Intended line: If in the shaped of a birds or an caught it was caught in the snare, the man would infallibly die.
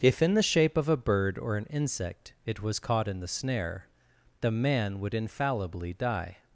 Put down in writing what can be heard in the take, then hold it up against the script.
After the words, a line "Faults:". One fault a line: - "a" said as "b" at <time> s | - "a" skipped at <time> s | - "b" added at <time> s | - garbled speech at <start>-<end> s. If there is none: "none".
If in the shape of a bird or an insect it was caught in the snare, the man would infallibly die.
Faults:
- "shaped" said as "shape" at 0.4 s
- "birds" said as "bird" at 1.0 s
- "caught" said as "insect" at 1.7 s